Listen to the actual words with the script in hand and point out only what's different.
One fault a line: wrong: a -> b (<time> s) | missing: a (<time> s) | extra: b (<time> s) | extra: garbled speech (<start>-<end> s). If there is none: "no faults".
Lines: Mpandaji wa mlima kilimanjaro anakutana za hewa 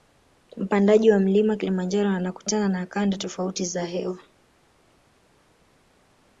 extra: na kanda tofauti (2.7 s)